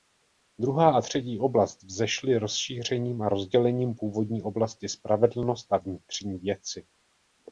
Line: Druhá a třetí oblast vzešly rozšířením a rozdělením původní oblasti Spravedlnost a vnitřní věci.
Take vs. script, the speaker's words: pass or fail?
pass